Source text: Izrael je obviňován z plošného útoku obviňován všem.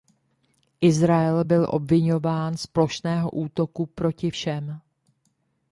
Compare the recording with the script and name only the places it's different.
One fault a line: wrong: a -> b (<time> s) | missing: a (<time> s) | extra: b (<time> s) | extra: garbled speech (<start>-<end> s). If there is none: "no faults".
wrong: je -> byl (1.4 s)
wrong: obviňován -> proti (3.8 s)